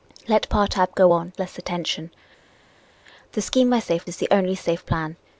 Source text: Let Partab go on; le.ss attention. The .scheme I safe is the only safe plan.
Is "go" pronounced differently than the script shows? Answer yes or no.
no